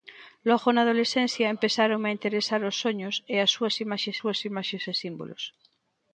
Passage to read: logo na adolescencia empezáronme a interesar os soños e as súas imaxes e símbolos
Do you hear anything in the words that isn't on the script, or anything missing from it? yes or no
yes